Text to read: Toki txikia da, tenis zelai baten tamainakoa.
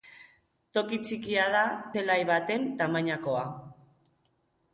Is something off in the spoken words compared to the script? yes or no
yes